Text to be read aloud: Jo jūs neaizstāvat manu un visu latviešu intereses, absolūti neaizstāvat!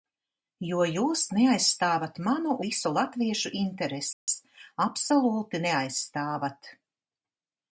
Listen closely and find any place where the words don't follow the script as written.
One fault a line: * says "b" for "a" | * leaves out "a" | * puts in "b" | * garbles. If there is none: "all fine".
* leaves out "un"